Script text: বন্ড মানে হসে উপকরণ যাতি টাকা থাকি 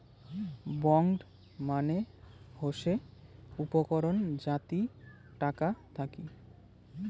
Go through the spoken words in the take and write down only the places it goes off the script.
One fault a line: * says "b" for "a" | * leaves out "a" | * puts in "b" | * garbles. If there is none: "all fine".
all fine